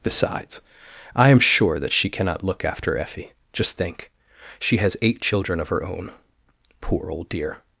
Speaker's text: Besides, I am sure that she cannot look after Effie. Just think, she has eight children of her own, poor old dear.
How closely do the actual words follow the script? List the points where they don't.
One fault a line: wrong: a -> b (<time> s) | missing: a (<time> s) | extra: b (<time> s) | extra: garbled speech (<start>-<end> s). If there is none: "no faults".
no faults